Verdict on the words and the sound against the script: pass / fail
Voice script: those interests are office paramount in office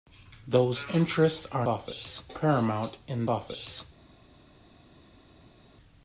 pass